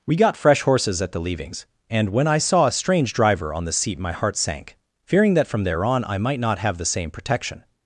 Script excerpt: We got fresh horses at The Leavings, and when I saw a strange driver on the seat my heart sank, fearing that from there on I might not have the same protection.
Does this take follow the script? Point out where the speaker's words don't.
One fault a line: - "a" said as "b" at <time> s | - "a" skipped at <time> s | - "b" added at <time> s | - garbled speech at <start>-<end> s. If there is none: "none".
none